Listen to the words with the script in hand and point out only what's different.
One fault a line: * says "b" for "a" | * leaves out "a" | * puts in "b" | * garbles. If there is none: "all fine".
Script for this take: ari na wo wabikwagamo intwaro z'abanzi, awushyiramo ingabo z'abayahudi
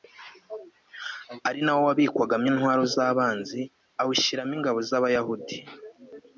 all fine